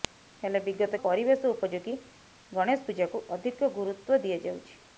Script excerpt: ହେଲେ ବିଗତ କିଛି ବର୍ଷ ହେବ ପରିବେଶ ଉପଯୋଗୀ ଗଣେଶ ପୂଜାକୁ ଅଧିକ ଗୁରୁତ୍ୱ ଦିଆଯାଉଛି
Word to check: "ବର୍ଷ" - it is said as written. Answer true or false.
false